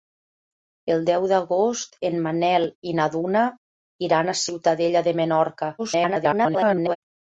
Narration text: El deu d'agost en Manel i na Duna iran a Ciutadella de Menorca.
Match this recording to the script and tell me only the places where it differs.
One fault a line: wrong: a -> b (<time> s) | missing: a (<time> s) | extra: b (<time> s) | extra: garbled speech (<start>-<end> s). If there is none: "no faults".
extra: garbled speech (5.8-7.0 s)